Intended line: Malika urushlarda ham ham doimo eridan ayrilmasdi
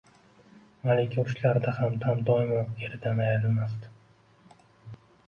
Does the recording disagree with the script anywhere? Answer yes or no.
no